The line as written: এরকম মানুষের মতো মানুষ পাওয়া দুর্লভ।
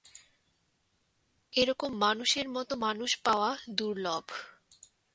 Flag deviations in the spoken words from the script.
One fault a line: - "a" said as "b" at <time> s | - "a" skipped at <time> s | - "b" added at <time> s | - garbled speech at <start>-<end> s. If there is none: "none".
none